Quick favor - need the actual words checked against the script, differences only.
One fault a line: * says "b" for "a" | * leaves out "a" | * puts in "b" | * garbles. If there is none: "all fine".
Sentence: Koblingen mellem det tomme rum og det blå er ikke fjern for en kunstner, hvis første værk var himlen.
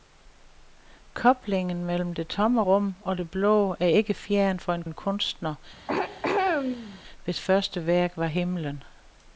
* puts in "en"